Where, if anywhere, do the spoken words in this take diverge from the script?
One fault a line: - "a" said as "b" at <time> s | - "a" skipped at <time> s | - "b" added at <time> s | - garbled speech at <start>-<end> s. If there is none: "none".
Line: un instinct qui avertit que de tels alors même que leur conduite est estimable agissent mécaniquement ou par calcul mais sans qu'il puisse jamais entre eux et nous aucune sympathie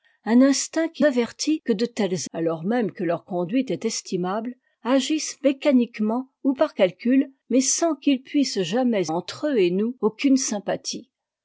none